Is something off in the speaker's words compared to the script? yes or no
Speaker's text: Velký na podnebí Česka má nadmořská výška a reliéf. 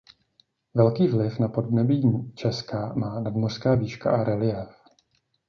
yes